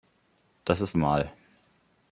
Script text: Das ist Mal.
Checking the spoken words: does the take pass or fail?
pass